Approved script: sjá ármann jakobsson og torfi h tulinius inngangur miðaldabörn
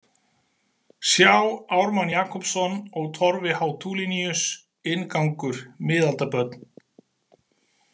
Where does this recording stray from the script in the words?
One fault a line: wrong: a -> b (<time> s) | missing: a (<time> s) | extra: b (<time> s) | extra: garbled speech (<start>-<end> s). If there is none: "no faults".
no faults